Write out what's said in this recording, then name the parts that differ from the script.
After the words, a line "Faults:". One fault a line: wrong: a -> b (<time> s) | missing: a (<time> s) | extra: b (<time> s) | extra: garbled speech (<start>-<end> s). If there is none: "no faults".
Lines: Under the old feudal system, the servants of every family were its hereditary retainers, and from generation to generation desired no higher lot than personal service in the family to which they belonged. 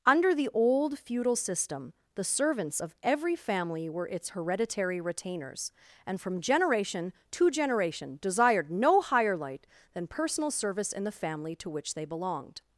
Under the old feudal system, the servants of every family were its hereditary retainers, and from generation to generation desired no higher light than personal service in the family to which they belonged.
Faults:
wrong: lot -> light (9.3 s)